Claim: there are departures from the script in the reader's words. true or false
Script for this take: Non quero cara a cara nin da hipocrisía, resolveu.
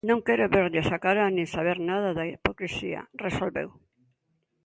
true